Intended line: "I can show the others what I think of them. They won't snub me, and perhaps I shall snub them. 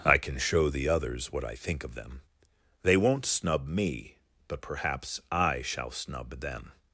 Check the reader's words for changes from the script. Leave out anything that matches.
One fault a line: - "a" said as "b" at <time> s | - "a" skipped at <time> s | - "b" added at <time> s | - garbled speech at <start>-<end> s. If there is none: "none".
- "and" said as "but" at 4.5 s